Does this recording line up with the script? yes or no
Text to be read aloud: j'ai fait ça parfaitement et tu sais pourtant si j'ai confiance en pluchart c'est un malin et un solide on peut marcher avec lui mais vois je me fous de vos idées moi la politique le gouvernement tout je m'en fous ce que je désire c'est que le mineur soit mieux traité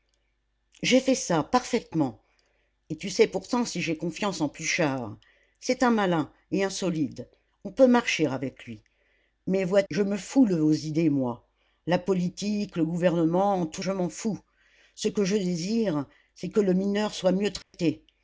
yes